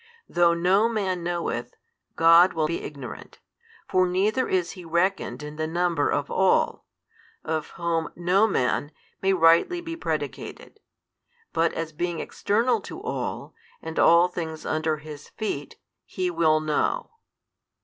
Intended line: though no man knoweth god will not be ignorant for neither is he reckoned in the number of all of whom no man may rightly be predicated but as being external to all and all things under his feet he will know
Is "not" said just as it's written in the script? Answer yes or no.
no